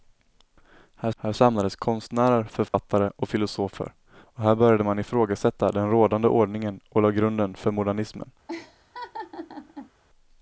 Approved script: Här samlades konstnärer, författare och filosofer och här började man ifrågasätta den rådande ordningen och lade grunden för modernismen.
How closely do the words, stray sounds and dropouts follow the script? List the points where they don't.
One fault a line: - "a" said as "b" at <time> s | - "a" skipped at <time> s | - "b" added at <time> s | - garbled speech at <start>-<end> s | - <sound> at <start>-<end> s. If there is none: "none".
- "här" added at 1.2 s
- dropout at 2.7-2.7 s
- laugh at 8.5-9.9 s